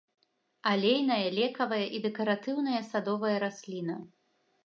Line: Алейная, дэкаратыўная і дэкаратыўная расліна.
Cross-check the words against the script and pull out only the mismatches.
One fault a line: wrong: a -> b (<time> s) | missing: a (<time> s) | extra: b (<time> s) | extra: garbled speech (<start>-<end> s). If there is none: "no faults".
wrong: дэкаратыўная -> лекавая (1.4 s)
extra: садовая (2.9 s)